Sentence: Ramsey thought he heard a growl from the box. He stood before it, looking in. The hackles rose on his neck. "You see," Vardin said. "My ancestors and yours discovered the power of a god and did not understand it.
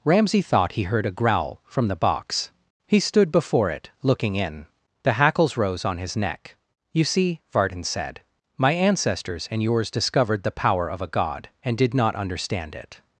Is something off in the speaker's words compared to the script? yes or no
no